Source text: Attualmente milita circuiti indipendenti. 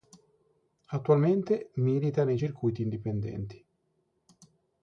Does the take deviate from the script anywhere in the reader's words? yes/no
yes